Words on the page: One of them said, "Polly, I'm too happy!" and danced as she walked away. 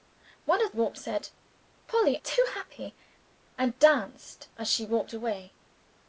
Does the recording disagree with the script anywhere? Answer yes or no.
yes